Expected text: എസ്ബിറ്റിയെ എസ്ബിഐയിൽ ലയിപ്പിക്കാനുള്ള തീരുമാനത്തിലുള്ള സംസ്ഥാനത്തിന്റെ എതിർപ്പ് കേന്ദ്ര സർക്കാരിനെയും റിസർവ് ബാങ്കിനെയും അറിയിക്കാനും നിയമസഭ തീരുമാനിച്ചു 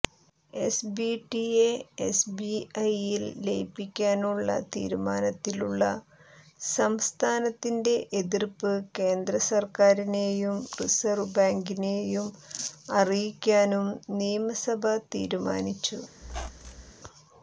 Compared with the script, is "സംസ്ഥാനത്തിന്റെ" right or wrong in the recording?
right